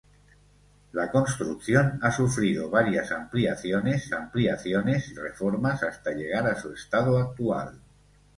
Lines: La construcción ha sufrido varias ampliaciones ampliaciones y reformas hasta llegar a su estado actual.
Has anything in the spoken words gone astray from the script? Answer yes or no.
no